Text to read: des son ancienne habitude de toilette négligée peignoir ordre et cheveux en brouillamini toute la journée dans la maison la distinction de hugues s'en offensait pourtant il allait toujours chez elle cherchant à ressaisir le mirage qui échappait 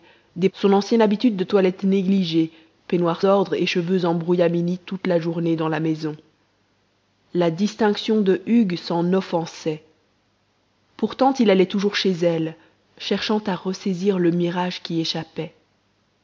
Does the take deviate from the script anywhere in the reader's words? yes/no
no